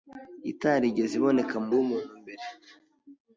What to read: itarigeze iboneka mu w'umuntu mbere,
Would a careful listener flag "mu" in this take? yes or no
no